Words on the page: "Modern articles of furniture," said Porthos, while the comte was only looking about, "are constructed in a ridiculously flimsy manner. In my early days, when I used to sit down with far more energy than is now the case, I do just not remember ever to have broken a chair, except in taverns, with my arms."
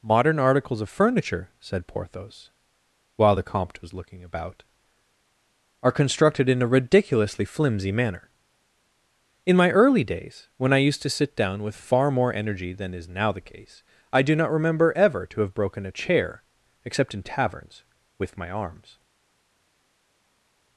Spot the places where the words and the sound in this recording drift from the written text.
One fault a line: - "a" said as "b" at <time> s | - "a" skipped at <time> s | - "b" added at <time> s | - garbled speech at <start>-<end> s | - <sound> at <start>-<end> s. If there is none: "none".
- "only" skipped at 3.9 s
- "just" skipped at 14.4 s